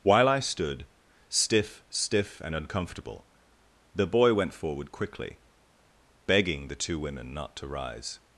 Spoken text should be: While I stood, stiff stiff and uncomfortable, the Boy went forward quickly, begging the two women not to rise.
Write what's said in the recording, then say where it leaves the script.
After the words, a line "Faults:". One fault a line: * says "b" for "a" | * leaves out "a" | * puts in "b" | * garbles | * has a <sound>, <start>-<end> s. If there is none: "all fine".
While I stood, stiff stiff and uncomfortable, the Boy went forward quickly, begging the two women not to rise.
Faults:
all fine